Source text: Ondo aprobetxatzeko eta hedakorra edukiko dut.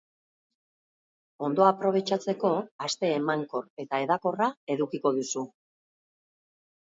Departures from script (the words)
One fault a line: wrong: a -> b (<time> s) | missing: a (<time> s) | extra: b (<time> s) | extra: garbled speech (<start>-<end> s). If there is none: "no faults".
extra: aste emankor (2.9 s)
wrong: dut -> duzu (5.2 s)